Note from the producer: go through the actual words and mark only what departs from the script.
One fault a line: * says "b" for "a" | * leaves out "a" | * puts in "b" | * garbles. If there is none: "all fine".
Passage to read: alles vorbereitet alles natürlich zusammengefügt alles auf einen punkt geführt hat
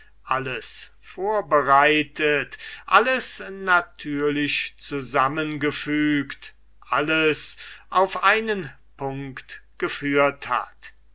all fine